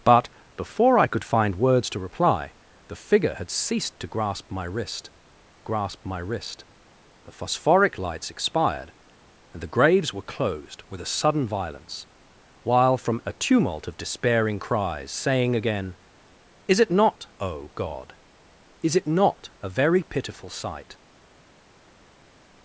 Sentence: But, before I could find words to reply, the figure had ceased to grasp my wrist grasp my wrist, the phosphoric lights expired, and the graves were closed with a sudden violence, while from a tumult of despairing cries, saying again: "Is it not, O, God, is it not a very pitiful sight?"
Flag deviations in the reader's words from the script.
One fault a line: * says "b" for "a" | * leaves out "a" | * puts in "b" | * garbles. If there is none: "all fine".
all fine